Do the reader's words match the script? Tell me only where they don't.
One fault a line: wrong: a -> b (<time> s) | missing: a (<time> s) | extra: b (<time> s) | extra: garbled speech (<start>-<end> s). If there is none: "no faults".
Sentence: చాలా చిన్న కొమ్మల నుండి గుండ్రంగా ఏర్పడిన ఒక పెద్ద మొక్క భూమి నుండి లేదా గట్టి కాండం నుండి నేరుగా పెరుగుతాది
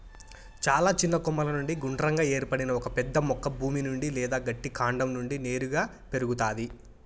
no faults